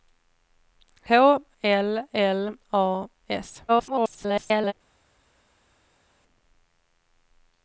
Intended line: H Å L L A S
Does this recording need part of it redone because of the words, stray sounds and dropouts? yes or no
yes